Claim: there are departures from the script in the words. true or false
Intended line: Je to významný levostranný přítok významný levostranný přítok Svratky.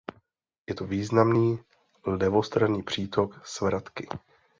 true